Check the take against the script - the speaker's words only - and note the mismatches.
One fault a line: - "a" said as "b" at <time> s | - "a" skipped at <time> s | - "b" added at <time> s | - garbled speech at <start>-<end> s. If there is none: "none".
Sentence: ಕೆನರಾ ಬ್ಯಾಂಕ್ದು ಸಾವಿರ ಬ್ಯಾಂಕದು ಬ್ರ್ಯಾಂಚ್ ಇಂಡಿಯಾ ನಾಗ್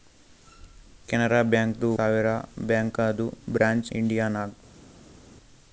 none